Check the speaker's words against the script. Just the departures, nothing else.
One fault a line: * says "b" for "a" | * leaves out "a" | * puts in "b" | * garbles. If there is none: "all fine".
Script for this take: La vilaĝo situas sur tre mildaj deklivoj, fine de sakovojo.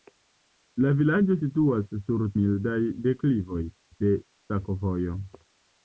* leaves out "tre"
* leaves out "fine"